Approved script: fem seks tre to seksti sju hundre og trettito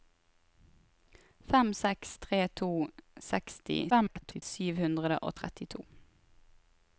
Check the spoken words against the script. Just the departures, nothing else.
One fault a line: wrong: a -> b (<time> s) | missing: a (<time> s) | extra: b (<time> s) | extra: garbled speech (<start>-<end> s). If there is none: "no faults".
extra: garbled speech (3.9-4.4 s)